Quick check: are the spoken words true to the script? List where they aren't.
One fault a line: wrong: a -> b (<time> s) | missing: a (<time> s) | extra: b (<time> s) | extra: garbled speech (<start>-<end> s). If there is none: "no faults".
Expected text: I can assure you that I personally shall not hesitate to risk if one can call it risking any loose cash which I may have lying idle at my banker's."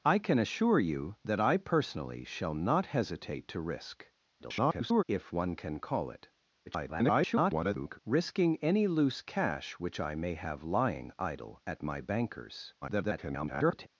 extra: garbled speech (4.4-5.0 s)
extra: garbled speech (6.7-8.0 s)
extra: garbled speech (12.8-13.9 s)